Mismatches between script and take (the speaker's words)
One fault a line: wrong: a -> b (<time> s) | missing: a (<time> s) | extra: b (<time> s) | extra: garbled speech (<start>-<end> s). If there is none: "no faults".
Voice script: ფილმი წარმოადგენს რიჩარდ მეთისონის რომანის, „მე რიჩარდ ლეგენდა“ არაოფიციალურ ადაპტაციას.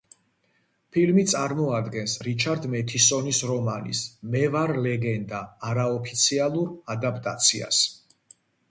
wrong: რიჩარდ -> ვარ (4.6 s)